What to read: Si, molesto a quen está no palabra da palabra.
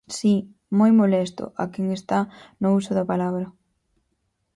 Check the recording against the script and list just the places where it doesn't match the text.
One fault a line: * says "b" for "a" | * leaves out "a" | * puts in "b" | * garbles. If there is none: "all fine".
* puts in "moi"
* says "uso" for "palabra"